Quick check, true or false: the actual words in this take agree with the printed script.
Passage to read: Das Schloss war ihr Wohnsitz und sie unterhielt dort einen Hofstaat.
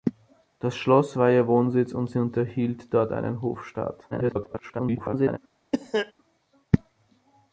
false